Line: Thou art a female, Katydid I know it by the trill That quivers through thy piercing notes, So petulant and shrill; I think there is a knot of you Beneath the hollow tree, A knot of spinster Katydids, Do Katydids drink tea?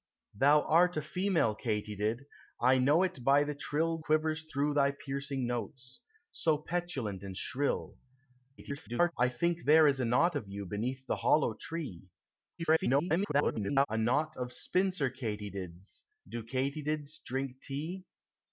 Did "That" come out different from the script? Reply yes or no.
yes